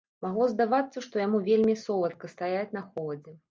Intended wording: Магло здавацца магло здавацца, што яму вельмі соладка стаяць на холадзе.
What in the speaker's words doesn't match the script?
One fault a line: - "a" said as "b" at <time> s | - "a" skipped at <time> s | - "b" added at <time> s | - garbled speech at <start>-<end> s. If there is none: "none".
- "магло здавацца" skipped at 1.0 s